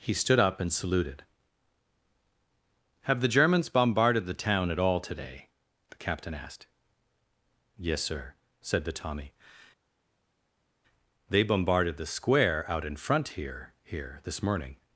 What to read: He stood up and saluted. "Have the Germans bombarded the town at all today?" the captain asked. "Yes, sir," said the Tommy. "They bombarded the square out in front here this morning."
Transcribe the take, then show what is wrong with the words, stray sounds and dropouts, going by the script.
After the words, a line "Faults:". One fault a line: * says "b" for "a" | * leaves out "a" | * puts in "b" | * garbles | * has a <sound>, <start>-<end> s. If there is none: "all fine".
He stood up and saluted. "Have the Germans bombarded the town at all today?" the captain asked. "Yes, sir," said the Tommy. "They bombarded the square out in front here here this morning."
Faults:
* puts in "here"